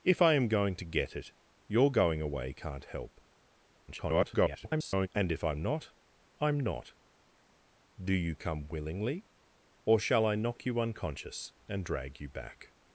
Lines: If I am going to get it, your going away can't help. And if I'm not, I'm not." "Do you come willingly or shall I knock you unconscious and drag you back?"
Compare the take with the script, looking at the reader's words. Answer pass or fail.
fail